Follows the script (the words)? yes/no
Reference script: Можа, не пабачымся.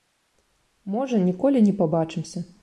no